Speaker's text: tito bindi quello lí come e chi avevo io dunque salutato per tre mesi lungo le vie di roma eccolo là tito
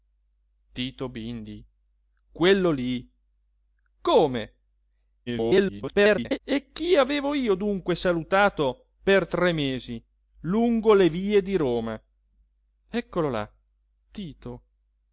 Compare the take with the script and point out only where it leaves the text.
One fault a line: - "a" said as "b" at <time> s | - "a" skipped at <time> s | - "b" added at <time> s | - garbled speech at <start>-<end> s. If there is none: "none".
- garbled speech at 5.3-6.4 s